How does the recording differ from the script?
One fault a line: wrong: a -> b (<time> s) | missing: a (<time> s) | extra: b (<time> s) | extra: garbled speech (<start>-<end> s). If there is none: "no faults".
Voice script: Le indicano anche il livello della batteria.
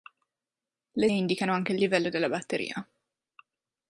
no faults